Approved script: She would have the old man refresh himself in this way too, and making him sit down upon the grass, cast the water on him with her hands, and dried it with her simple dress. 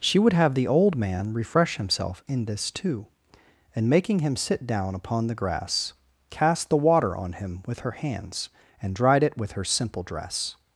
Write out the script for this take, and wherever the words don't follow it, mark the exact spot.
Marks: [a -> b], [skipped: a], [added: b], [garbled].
She would have the old man refresh himself in this [skipped: way] too, and making him sit down upon the grass, cast the water on him with her hands, and dried it with her simple dress.